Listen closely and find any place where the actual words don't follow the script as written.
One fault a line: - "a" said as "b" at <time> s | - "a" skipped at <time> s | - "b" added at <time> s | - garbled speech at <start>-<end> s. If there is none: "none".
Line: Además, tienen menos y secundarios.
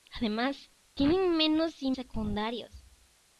none